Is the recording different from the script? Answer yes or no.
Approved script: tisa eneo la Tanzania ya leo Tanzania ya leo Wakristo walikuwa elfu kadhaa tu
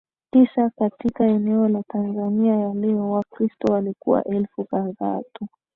yes